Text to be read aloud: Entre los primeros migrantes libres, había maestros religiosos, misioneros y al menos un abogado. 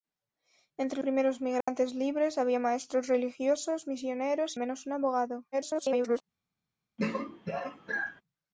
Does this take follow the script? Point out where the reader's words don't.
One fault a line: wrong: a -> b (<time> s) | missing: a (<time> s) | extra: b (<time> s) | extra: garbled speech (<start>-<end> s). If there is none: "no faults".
missing: los (1.0 s)
missing: al (4.6 s)
extra: garbled speech (5.5-6.2 s)